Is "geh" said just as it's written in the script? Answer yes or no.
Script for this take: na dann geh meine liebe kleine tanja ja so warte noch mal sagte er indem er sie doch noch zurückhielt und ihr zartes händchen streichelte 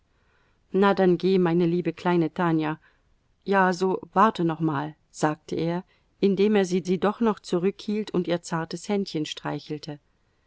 yes